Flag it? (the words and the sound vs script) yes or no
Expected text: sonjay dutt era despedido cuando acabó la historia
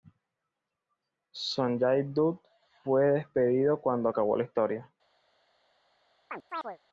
yes